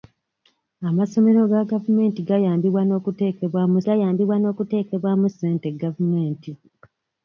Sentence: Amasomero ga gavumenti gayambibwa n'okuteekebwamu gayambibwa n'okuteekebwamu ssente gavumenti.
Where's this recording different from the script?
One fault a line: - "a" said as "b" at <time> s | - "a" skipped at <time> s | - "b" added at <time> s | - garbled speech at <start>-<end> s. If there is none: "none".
none